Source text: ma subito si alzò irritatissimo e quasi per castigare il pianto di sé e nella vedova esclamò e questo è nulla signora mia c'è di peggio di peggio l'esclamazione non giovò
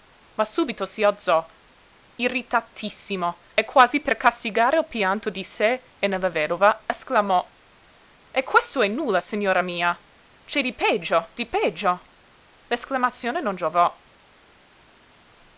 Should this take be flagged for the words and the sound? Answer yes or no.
no